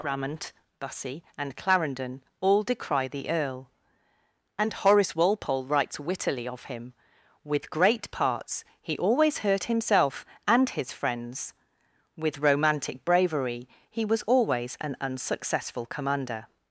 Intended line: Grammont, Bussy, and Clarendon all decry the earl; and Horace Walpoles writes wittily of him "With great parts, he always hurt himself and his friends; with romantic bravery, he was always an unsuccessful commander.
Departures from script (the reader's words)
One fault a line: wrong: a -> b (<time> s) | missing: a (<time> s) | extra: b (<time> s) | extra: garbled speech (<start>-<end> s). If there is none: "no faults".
wrong: Walpoles -> Walpole (5.2 s)